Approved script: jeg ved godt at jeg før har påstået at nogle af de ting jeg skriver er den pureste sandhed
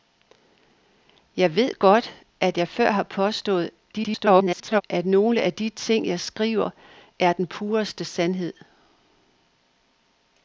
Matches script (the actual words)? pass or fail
fail